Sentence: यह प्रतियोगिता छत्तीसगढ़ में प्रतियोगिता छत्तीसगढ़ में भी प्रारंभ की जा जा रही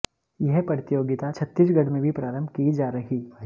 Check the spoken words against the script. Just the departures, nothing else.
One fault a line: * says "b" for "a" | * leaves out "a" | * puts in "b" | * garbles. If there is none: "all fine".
* leaves out "प्रतियोगिता छत्तीसगढ़ में"
* leaves out "जा"